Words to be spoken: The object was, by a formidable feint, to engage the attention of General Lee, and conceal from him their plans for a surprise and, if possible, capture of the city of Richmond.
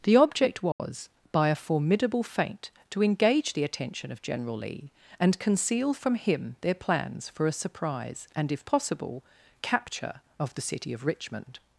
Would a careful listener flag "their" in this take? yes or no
no